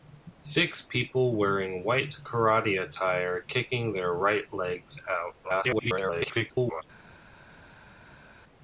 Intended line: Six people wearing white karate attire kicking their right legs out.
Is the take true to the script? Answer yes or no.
no